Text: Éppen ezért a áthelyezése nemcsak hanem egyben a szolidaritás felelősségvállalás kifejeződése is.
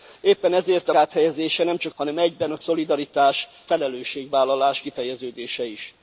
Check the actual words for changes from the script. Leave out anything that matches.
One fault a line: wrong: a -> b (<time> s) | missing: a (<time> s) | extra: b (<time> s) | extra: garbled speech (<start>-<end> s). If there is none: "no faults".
no faults